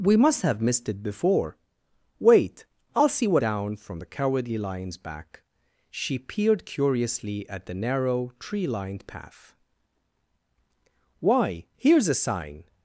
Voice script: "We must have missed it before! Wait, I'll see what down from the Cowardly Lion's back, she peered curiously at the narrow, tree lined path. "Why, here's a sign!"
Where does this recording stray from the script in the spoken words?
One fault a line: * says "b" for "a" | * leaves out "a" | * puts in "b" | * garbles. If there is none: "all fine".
all fine